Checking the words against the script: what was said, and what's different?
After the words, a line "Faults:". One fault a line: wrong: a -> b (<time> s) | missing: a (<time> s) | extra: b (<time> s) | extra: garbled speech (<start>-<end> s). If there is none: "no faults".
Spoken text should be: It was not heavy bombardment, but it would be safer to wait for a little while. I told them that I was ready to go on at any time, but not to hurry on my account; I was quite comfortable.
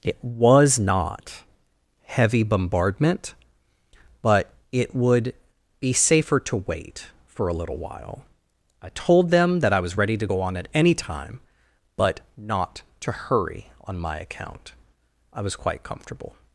It was not heavy bombardment, but it would be safer to wait for a little while. I told them that I was ready to go on at any time, but not to hurry on my account; I was quite comfortable.
Faults:
no faults